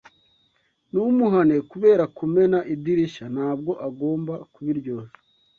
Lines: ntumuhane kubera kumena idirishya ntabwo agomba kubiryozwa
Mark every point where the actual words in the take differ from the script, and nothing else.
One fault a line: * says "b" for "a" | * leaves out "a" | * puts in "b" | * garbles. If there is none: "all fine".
all fine